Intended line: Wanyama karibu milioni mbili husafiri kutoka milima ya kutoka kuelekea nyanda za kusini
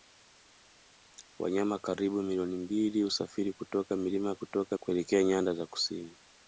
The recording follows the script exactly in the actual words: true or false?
true